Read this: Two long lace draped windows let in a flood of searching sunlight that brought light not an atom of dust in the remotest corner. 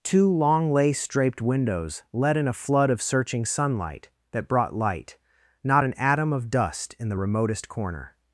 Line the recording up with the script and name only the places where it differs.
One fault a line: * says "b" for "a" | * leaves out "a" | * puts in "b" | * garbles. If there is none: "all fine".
all fine